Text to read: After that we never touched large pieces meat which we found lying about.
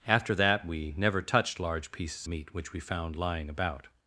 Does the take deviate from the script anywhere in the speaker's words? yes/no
no